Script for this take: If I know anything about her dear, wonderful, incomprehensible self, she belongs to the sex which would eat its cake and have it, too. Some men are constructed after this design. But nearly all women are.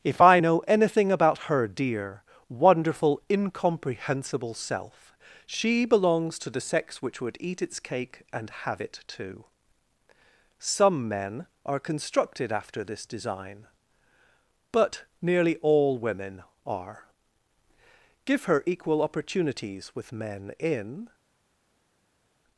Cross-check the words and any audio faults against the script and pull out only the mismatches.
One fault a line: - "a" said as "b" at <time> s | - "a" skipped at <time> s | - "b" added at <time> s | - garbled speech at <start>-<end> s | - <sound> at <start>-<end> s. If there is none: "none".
- "Give her equal opportunities with men in" added at 18.2 s